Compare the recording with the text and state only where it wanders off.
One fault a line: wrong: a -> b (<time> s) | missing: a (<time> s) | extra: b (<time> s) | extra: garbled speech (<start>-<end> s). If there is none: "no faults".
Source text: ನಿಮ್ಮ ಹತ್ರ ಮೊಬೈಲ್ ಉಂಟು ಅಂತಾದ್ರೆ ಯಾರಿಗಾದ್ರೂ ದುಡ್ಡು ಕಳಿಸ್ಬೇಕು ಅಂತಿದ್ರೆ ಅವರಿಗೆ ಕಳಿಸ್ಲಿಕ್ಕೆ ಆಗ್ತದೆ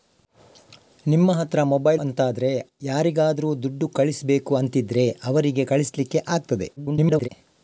missing: ಉಂಟು (2.0 s)
extra: garbled speech (6.8-7.3 s)